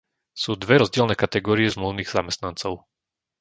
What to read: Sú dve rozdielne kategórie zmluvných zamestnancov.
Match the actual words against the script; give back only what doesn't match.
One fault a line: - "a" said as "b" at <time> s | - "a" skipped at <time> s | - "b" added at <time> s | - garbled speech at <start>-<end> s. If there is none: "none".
none